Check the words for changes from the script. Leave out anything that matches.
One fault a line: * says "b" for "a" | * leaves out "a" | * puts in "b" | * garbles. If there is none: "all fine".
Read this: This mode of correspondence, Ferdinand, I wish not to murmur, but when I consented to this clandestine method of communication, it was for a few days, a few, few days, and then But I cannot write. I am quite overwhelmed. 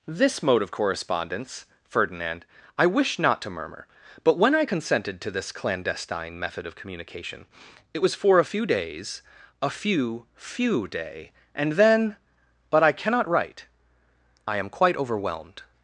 * says "day" for "days"